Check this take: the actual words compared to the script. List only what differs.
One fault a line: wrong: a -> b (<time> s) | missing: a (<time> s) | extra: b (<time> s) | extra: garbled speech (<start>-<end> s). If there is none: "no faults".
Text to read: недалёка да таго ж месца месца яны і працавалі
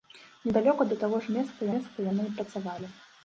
no faults